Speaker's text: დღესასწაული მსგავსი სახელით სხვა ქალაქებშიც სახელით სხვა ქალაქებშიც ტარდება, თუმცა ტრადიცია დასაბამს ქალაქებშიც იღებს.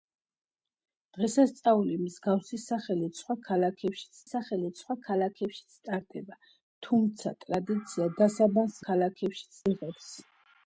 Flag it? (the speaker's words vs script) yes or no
no